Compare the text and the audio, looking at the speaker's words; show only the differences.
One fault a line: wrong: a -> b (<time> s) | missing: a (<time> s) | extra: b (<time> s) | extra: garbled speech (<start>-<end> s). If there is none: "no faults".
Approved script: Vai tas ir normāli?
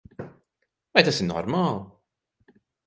no faults